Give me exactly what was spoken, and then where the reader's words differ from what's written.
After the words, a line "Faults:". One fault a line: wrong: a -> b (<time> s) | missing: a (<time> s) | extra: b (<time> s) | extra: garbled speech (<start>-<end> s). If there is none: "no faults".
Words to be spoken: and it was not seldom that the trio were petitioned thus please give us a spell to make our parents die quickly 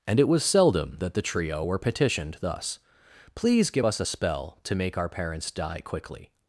and it was seldom that the trio were petitioned thus please give us a spell to make our parents die quickly
Faults:
missing: not (0.4 s)